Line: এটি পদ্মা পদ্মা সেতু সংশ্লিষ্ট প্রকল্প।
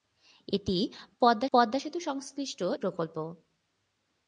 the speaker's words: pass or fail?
pass